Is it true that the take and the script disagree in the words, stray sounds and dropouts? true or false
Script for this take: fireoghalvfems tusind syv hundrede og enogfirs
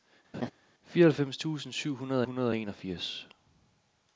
true